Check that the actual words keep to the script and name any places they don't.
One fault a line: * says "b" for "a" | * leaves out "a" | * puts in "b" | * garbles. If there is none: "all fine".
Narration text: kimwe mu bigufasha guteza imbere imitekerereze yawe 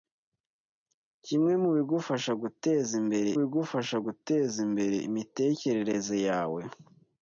* puts in "bigufasha guteza imbere"